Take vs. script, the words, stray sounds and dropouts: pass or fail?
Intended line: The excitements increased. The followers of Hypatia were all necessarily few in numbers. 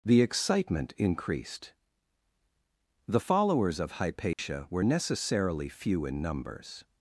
fail